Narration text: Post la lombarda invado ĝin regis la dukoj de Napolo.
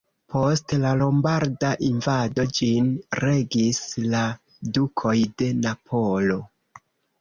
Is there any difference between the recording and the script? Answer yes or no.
no